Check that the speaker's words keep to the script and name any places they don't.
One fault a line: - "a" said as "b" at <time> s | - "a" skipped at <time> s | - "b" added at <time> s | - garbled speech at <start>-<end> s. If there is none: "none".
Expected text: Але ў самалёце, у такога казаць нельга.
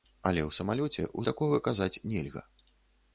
none